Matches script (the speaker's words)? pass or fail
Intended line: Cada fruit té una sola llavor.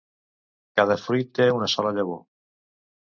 pass